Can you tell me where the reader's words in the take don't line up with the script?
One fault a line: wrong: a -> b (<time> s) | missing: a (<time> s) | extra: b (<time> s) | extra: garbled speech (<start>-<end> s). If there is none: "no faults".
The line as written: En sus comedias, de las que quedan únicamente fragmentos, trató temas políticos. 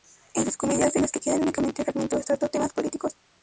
no faults